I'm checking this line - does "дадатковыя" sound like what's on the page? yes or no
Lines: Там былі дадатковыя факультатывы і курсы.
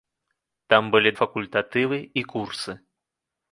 no